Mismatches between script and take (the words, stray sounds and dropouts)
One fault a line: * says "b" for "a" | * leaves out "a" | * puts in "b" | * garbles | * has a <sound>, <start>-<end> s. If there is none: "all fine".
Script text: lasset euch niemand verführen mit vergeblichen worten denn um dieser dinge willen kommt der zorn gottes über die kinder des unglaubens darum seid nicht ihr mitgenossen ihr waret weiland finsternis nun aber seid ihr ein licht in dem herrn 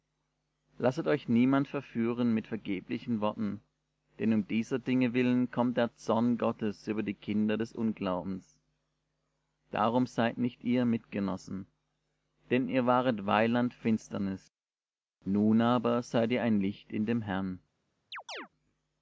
* puts in "denn"
* has a chirp, 18.1-18.5 s